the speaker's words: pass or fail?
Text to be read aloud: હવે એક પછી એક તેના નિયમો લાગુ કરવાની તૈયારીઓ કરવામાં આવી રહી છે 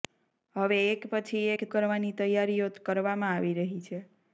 fail